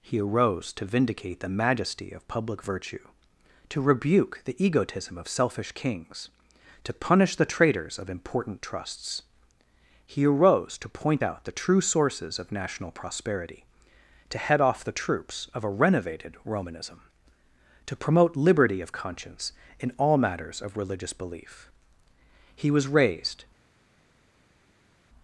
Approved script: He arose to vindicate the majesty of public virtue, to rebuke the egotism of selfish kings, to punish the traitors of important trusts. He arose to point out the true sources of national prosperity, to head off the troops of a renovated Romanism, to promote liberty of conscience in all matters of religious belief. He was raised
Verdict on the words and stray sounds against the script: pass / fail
pass